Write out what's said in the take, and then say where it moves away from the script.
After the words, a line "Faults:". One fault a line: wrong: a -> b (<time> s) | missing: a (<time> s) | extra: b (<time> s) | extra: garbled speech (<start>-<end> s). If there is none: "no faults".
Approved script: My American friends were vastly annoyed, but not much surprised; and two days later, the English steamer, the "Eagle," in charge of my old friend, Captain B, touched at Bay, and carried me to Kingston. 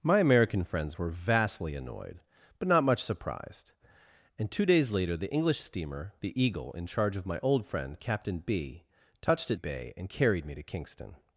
My American friends were vastly annoyed, but not much surprised; and two days later, the English steamer, the "Eagle," in charge of my old friend, Captain B, touched at Bay, and carried me to Kingston.
Faults:
no faults